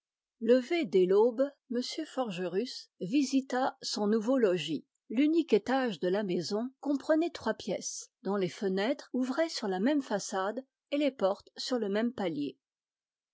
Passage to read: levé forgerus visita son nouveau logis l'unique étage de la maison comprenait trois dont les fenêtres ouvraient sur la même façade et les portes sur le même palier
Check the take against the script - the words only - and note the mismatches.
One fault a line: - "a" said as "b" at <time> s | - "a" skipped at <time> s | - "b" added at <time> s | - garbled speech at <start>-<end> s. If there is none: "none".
- "dès l'aube m" added at 0.8 s
- "pièces" added at 7.5 s